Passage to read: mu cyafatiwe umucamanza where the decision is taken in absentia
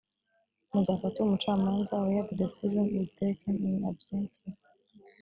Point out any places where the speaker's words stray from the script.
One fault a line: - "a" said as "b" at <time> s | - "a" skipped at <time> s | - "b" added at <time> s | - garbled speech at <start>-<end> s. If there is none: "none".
none